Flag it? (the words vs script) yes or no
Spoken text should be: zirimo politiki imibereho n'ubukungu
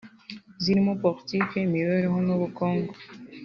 no